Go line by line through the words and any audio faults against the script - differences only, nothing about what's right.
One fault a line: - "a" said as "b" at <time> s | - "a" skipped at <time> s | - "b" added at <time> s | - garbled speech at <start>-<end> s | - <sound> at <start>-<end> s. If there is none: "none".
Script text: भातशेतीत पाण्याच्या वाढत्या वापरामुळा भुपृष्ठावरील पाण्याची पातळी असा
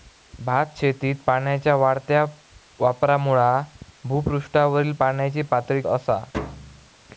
- thud at 6.3-6.9 s